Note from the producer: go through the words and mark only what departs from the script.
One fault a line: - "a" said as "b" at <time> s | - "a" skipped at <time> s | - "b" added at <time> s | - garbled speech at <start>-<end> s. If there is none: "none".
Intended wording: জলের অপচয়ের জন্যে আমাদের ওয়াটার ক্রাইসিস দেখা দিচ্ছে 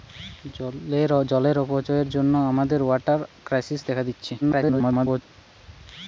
- garbled speech at 4.4-5.2 s